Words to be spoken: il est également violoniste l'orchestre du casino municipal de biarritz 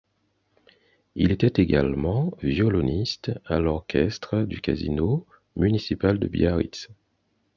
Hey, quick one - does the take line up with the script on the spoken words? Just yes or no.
no